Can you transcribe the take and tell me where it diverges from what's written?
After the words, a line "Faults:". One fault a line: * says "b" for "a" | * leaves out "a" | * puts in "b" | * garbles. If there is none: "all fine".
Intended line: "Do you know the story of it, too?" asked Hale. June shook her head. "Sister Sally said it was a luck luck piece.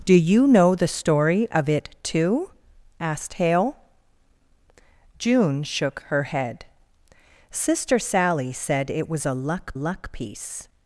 "Do you know the story of it, too?" asked Hale. June shook her head. "Sister Sally said it was a luck luck piece.
Faults:
all fine